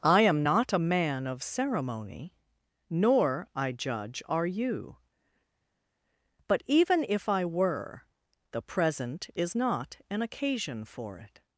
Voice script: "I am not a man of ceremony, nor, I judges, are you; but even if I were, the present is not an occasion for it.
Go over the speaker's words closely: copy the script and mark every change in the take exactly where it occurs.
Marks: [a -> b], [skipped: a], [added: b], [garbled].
"I am not a man of ceremony, nor, I [judges, -> judge] are you; but even if I were, the present is not an occasion for it.